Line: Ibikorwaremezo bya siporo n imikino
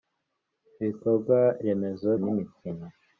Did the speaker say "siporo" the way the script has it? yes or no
no